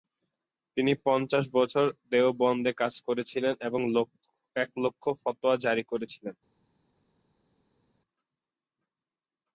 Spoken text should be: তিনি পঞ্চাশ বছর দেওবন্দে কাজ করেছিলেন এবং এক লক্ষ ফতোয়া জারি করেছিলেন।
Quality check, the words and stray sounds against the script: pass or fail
pass